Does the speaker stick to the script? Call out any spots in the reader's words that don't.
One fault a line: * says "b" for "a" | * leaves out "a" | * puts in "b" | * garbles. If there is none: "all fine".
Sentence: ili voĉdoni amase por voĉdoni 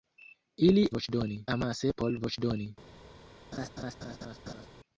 all fine